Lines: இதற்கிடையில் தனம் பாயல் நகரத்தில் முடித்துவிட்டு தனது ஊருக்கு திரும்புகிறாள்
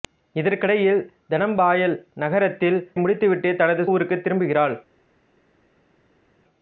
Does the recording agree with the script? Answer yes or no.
yes